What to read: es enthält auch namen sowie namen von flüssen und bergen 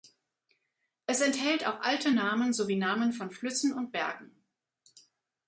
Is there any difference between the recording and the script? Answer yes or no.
yes